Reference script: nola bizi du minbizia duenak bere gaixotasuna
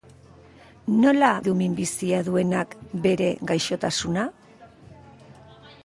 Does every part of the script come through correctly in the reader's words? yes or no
no